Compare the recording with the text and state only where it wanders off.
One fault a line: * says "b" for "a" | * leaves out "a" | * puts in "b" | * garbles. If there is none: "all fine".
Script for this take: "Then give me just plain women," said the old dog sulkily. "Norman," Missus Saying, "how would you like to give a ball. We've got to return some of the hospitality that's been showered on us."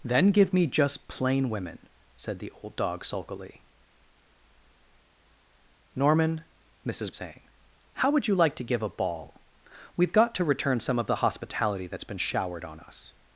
all fine